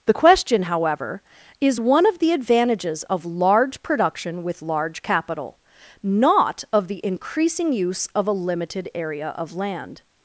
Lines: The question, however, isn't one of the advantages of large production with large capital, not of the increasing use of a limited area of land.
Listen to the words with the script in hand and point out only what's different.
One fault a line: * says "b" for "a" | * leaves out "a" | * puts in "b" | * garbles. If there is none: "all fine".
* says "is" for "isn't"